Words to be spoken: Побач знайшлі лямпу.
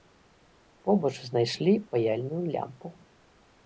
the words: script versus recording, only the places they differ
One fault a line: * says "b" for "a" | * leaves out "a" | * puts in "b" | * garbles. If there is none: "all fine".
* puts in "паяльную"